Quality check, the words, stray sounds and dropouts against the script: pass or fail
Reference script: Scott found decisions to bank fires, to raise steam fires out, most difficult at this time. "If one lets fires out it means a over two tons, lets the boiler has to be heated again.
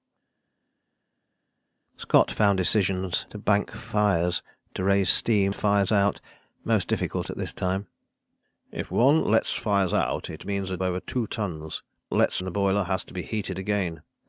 pass